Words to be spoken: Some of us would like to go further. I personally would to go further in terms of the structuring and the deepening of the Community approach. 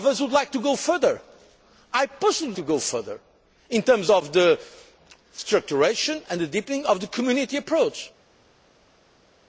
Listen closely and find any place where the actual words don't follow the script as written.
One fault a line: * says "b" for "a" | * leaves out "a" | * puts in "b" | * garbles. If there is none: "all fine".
all fine